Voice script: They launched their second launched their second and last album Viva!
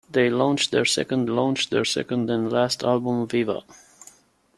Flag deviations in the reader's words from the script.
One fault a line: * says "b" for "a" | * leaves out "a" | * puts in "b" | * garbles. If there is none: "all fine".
all fine